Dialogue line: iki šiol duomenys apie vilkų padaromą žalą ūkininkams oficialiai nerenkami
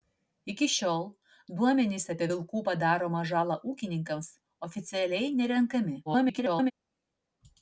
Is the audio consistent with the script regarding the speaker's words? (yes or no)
no